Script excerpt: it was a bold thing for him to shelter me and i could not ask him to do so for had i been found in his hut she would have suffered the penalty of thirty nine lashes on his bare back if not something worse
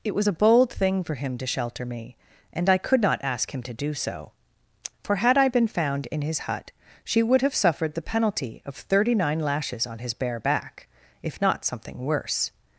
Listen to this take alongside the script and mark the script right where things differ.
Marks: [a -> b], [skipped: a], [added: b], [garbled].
it was a bold thing for him to shelter me and i could not ask him to do so for had i been found in his hut she would have suffered the penalty of thirty nine lashes on his bare back if not something worse